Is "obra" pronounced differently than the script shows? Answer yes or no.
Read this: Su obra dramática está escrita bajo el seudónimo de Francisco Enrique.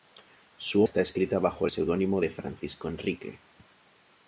yes